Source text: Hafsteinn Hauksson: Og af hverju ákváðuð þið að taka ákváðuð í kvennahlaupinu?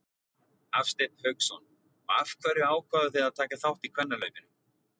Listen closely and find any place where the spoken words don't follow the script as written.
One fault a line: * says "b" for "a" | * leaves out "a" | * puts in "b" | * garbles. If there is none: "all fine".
* says "þátt" for "ákváðuð"